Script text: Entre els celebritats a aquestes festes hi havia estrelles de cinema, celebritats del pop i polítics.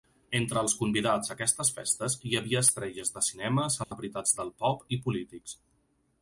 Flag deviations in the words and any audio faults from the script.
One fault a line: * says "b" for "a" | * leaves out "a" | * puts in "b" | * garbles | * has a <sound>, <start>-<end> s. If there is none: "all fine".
* says "convidats" for "celebritats"
* has a dropout, 3.8-3.9 s